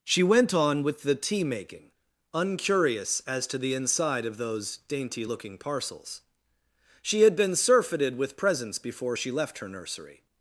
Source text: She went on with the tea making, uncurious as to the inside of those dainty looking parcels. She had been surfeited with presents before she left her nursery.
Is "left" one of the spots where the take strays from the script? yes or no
no